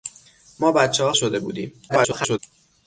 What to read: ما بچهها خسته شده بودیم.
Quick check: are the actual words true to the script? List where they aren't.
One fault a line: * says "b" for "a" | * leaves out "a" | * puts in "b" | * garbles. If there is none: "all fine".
* leaves out "خسته"
* garbles